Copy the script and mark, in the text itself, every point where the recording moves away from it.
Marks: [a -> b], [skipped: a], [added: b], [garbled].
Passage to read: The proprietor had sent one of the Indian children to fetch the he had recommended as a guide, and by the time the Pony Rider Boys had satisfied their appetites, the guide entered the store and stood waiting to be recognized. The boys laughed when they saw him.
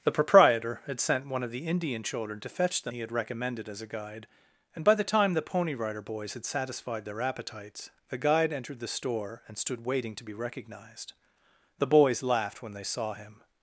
The proprietor had sent one of the Indian children to fetch the he had recommended as a guide, and by the time the Pony Rider Boys had satisfied their appetites, the guide entered the store and stood waiting to be recognized. The boys laughed when they saw him.